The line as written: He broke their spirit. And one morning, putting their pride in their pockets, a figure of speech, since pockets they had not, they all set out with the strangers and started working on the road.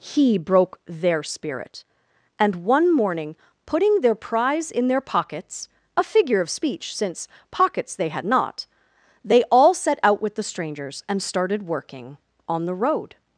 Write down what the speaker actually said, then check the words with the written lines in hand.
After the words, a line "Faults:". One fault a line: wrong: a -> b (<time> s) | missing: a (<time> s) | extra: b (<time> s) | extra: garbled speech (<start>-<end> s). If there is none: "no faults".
He broke their spirit. And one morning, putting their prize in their pockets, a figure of speech, since pockets they had not, they all set out with the strangers and started working on the road.
Faults:
wrong: pride -> prize (4.2 s)